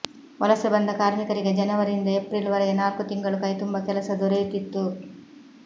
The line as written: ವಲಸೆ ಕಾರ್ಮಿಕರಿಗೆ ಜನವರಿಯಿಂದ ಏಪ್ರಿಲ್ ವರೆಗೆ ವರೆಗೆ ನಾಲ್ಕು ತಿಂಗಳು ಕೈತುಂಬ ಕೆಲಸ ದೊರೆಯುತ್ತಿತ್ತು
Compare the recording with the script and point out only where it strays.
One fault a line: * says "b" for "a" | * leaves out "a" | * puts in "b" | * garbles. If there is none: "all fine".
* puts in "ಬಂದ"
* leaves out "ವರೆಗೆ"